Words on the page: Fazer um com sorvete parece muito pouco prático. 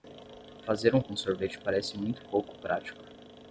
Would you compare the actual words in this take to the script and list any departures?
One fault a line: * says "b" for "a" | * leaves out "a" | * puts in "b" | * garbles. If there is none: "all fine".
all fine